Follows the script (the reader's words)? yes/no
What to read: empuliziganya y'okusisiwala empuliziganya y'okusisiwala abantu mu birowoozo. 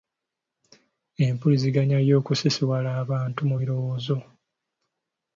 no